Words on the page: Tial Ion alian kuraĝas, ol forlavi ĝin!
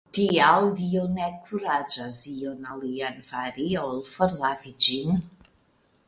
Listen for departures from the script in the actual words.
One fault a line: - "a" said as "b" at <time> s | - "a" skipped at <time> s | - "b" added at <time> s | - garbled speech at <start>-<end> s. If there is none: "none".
- "Dio ne kuraĝas" added at 0.8 s
- "kuraĝas" said as "fari" at 3.3 s